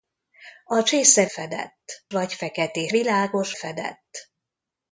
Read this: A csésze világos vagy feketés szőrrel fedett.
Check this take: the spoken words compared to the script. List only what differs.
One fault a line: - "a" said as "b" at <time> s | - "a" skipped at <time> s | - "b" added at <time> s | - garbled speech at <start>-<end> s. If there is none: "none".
- "világos" said as "fedett" at 1.3 s
- "szőrrel" said as "világos" at 2.9 s